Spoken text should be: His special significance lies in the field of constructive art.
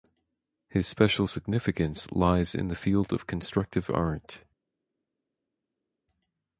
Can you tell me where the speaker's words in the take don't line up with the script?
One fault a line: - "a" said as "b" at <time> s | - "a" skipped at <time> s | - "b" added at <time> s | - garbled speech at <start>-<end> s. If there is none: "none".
none